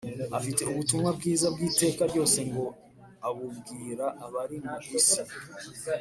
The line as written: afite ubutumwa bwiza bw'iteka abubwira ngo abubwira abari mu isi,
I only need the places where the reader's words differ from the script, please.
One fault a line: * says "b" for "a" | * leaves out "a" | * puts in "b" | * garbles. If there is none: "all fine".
* says "ryose" for "abubwira"